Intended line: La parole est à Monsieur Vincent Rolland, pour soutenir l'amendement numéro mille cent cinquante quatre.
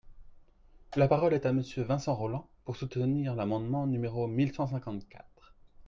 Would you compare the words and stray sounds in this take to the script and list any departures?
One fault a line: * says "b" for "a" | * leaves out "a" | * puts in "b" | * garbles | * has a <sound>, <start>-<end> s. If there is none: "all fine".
all fine